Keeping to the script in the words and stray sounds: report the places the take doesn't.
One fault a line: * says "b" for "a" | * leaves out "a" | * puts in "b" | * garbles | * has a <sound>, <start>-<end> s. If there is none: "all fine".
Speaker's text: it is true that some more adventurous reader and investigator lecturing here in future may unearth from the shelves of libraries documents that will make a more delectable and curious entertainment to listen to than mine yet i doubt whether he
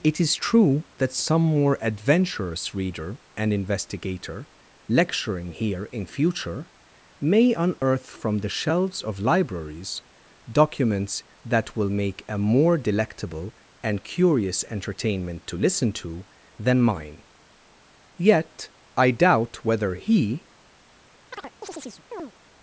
* has a dropout, 7.8-7.8 s
* has a chirp, 21.3-22.3 s